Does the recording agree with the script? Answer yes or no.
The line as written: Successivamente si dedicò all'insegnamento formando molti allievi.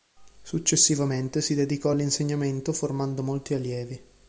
yes